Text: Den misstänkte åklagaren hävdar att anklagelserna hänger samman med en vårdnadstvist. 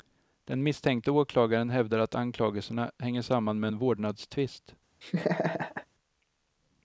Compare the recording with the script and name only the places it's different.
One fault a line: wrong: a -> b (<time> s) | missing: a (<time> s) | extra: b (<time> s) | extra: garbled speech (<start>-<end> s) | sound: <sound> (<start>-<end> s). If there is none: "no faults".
sound: laugh (5.0-5.9 s)